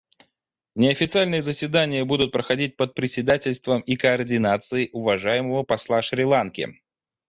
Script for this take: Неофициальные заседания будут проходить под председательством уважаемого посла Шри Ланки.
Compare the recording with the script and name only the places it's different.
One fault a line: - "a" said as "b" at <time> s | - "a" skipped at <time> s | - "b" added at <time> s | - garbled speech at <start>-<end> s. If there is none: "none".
- "и координацией" added at 3.8 s